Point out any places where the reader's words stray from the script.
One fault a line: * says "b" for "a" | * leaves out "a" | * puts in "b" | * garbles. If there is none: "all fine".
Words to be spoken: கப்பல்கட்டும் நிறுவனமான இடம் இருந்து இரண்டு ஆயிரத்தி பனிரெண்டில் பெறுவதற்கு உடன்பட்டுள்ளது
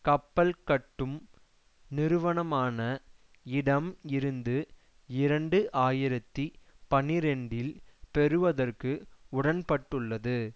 all fine